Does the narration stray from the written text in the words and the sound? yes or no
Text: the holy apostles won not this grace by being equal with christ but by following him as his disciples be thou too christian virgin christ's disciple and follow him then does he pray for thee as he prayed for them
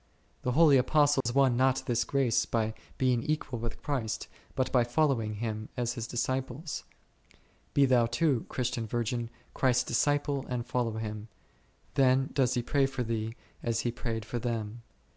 yes